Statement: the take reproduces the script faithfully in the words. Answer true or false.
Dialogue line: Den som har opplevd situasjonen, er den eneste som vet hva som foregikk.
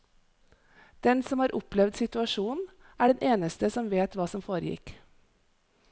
true